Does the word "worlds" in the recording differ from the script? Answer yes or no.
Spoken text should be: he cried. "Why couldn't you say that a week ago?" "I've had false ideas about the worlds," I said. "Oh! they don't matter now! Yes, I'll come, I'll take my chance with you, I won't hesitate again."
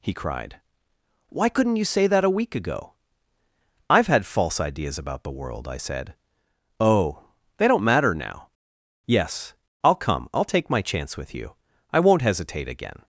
yes